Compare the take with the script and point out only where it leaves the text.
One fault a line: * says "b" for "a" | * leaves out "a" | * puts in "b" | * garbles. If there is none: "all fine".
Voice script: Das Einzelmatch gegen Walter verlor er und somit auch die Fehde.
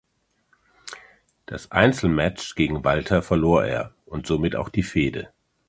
all fine